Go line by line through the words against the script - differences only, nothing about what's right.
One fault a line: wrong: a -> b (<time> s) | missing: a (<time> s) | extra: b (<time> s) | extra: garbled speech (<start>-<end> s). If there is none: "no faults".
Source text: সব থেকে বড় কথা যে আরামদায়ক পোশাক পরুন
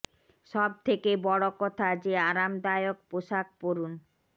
no faults